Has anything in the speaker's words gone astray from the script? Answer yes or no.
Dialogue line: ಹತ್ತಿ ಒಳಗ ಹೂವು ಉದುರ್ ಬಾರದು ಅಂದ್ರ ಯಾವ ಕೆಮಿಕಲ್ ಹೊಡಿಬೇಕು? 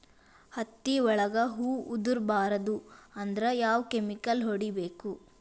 no